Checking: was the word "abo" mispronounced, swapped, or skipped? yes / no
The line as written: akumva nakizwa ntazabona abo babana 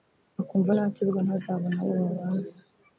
no